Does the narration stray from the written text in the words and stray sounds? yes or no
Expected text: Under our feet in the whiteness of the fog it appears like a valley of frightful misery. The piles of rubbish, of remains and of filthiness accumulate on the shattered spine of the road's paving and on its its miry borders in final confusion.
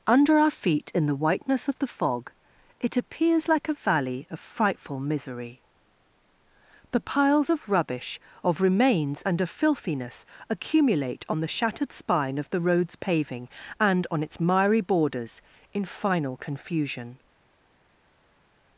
yes